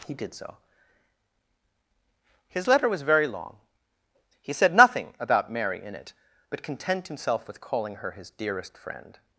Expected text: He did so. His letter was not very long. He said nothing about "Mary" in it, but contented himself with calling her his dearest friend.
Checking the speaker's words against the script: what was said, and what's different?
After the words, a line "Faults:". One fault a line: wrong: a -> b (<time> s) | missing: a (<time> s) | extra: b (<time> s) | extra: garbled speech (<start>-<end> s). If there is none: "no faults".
He did so. His letter was very long. He said nothing about "Mary" in it, but content himself with calling her his dearest friend.
Faults:
missing: not (3.0 s)
wrong: contented -> content (6.6 s)